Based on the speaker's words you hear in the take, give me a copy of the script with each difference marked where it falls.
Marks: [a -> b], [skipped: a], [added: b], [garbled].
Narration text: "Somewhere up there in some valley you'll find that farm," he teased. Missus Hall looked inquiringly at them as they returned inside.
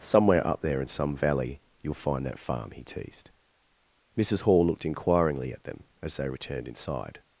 "Somewhere up there in some valley you'll find that farm," he teased. Missus Hall looked inquiringly at them as they returned inside.